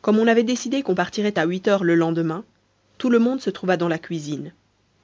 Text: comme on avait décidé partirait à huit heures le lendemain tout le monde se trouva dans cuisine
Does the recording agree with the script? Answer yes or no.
no